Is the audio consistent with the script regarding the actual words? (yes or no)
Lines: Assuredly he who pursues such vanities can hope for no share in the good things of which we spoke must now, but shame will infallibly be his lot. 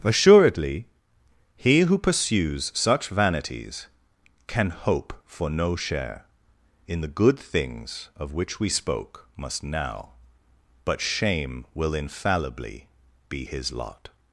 yes